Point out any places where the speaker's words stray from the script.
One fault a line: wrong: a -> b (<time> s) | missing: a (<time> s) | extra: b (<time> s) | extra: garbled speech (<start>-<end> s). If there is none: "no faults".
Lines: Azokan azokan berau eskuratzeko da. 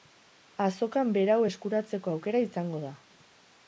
missing: azokan (1.1 s)
extra: aukera izango (2.2 s)